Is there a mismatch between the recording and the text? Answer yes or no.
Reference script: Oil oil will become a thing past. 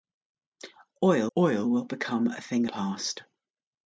no